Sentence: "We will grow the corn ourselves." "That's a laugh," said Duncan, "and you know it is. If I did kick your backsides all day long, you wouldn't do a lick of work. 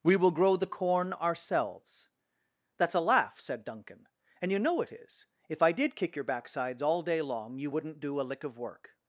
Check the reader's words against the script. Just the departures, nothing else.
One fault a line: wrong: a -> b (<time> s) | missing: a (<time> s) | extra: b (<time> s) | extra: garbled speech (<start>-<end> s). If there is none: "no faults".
no faults